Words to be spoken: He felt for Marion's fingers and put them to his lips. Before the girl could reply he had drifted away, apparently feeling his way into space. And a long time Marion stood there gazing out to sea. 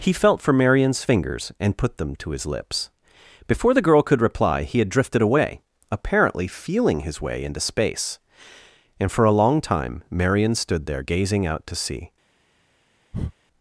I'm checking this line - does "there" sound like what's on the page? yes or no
yes